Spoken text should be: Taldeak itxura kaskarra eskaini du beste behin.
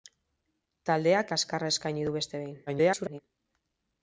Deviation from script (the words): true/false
true